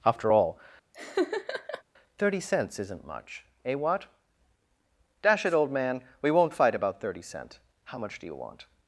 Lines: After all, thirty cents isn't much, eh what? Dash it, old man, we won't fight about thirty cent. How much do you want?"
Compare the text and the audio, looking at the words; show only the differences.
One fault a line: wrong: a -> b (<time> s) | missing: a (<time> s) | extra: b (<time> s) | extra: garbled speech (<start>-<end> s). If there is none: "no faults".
no faults